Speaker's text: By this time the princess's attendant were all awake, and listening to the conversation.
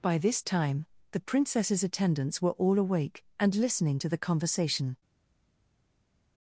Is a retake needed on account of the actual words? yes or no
yes